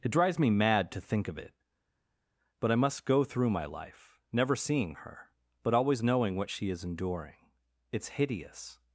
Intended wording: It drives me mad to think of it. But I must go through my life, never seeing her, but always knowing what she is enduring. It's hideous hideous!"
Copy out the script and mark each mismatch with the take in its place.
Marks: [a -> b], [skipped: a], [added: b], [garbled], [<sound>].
It drives me mad to think of it. But I must go through my life, never seeing her, but always knowing what she is enduring. It's hideous [skipped: hideous!"]